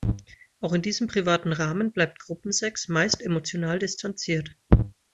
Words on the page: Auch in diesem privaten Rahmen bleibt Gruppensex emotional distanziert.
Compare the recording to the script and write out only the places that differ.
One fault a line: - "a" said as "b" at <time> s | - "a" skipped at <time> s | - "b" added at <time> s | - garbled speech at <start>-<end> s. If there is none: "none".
- "meist" added at 2.9 s